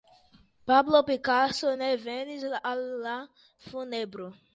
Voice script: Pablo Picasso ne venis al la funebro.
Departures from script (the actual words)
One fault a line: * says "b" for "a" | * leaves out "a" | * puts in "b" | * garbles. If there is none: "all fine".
all fine